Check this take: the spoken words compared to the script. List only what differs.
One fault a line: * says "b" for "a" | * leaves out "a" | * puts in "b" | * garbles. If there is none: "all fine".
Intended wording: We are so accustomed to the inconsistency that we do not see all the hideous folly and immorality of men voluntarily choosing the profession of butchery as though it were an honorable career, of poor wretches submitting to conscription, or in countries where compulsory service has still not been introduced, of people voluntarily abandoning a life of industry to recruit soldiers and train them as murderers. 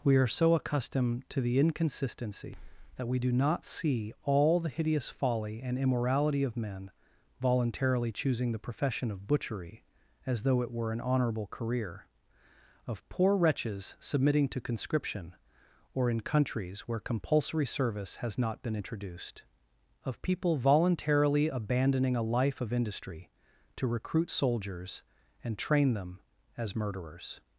* leaves out "still"